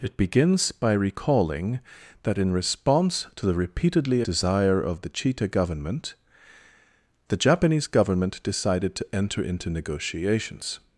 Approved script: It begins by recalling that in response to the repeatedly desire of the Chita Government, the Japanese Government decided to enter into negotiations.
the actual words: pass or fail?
pass